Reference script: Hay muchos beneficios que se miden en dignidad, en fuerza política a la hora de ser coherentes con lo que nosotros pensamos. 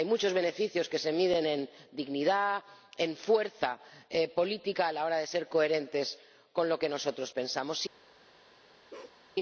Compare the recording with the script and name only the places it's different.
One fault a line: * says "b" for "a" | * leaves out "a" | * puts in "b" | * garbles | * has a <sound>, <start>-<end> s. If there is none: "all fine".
* has a bark, 8.9-9.2 s